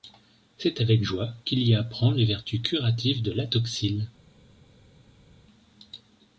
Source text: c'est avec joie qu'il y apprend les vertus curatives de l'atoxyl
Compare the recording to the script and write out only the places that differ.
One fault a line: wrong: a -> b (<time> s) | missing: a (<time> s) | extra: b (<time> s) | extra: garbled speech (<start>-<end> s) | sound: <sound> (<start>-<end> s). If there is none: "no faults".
no faults